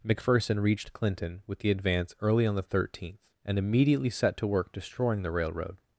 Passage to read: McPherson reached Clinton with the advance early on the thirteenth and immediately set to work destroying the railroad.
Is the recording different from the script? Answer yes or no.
no